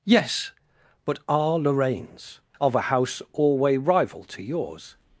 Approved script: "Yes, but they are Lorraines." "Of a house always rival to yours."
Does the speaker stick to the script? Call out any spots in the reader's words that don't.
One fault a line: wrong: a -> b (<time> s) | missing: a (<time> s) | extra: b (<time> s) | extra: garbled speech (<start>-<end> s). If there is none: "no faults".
missing: they (1.2 s)
wrong: always -> alway (3.3 s)